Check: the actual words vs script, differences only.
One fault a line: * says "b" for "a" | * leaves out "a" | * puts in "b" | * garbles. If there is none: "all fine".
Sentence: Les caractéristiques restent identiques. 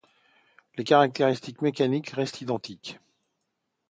* puts in "mécaniques"